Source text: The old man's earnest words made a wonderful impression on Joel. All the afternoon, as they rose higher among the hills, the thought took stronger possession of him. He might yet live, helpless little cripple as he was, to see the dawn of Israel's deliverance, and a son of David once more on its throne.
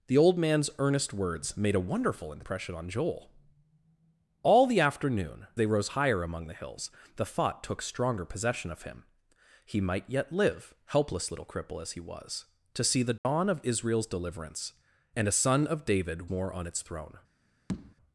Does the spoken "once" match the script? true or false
false